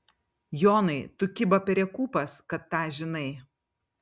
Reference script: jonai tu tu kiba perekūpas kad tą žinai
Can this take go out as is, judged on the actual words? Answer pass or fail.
fail